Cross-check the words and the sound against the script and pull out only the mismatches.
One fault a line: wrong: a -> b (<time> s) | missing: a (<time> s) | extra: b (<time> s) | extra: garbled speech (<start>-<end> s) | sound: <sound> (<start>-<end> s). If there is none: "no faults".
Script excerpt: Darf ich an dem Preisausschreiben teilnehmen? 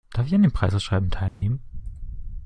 sound: dropout (1.3-1.4 s)